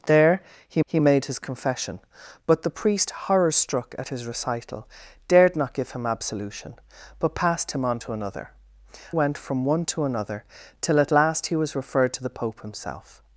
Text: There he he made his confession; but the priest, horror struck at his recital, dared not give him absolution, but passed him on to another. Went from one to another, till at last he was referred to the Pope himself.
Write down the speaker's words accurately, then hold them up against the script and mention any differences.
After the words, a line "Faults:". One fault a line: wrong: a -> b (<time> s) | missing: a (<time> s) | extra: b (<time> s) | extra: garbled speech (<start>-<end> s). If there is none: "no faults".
There he he made his confession; but the priest, horror struck at his recital, dared not give him absolution, but passed him on to another. Went from one to another, till at last he was referred to the Pope himself.
Faults:
no faults